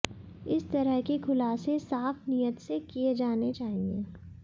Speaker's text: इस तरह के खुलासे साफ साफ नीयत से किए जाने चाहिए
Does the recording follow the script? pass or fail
fail